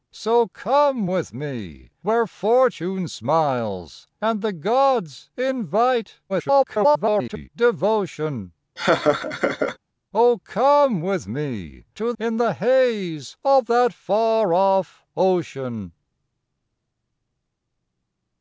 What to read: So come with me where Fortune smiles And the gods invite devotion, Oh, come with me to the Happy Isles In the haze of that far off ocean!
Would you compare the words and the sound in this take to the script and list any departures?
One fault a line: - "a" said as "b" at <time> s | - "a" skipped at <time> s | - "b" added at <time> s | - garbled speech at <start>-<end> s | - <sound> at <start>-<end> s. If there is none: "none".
- garbled speech at 6.3-7.5 s
- laugh at 8.8-9.8 s
- "the Happy Isles" skipped at 12.1 s